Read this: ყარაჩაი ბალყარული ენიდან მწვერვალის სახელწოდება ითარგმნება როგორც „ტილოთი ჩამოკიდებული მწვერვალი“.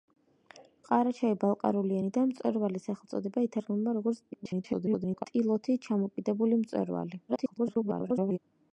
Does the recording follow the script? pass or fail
fail